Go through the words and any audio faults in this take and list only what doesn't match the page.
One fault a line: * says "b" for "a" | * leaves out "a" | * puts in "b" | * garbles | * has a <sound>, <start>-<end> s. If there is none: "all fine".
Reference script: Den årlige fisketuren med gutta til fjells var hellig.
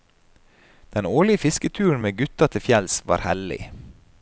all fine